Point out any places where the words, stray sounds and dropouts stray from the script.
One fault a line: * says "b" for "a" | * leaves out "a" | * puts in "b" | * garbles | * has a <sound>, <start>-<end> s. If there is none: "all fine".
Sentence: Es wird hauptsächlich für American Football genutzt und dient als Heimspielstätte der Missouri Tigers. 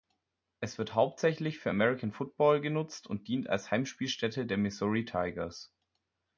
all fine